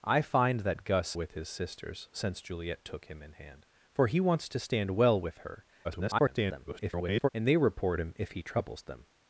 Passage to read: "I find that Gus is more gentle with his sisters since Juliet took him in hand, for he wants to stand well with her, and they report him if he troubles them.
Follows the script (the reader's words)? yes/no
no